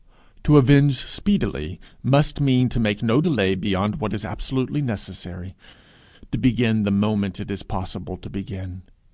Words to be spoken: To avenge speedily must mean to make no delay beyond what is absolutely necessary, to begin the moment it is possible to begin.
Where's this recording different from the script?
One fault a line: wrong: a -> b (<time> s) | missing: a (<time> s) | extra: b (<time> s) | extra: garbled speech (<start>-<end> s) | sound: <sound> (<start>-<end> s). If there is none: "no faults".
no faults